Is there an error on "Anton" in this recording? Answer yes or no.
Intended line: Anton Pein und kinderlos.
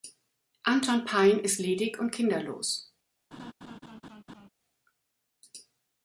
no